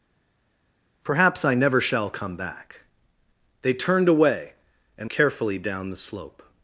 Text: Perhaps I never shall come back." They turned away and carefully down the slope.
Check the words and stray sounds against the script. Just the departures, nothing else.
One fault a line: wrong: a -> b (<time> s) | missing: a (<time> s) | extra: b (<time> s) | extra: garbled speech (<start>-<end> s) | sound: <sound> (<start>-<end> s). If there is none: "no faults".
no faults